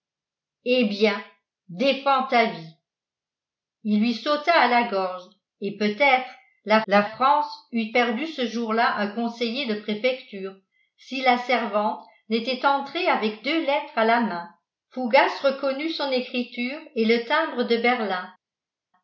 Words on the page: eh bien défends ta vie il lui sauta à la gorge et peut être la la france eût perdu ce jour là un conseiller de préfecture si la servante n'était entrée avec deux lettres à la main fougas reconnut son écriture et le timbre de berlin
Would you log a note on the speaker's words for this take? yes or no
no